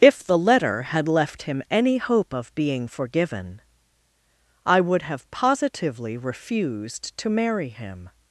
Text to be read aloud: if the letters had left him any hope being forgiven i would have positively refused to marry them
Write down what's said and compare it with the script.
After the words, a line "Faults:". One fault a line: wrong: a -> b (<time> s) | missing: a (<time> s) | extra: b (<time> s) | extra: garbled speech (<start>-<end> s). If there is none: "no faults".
if the letter had left him any hope of being forgiven i would have positively refused to marry him
Faults:
wrong: letters -> letter (0.4 s)
extra: of (2.3 s)
wrong: them -> him (7.7 s)